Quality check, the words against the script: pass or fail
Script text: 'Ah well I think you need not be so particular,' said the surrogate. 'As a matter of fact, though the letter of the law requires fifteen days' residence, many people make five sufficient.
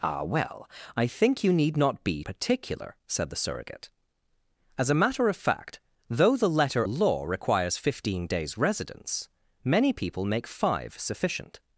fail